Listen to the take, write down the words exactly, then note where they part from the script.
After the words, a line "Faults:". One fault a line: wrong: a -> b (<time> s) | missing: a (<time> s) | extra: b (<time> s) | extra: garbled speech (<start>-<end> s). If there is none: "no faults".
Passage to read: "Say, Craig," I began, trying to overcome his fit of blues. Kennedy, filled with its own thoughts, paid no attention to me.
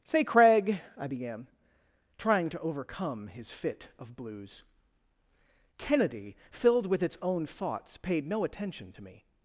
"Say, Craig," I began, trying to overcome his fit of blues. Kennedy, filled with its own thoughts, paid no attention to me.
Faults:
no faults